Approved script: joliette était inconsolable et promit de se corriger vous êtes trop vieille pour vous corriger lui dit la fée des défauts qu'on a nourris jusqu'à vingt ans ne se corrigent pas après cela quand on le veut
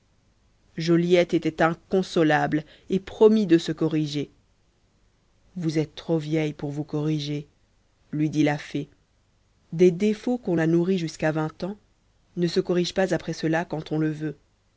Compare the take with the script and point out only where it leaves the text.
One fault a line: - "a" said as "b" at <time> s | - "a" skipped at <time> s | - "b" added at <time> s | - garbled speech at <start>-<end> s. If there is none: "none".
none